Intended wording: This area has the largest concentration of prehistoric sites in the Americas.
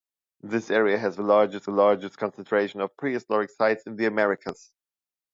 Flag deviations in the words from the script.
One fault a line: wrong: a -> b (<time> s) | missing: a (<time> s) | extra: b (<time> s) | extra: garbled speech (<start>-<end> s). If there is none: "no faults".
extra: largest (1.7 s)